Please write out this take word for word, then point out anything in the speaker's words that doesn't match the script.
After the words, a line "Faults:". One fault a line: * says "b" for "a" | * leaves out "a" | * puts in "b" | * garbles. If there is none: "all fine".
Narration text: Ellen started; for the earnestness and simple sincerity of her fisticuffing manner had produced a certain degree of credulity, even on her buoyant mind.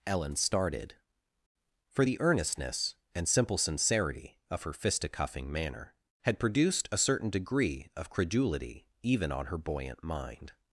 Ellen started; for the earnestness and simple sincerity of her fisticuffing manner had produced a certain degree of credulity, even on her buoyant mind.
Faults:
all fine